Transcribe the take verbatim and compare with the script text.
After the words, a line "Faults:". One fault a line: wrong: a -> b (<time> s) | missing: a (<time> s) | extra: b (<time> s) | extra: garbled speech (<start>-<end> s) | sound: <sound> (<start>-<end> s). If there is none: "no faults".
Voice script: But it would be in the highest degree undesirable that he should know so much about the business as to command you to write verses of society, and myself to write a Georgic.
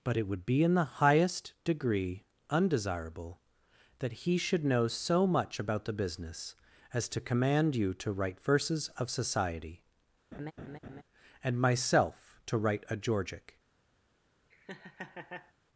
But it would be in the highest degree undesirable that he should know so much about the business as to command you to write verses of society, and myself to write a Georgic.
Faults:
sound: laugh (10.3-11.0 s)
sound: laugh (14.5-15.5 s)